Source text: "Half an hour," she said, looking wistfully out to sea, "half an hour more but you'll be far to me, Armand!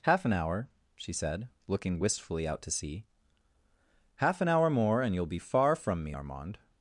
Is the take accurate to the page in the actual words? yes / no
no